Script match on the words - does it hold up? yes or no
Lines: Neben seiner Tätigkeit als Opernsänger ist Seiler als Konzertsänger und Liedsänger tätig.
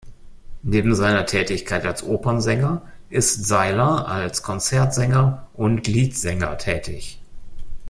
yes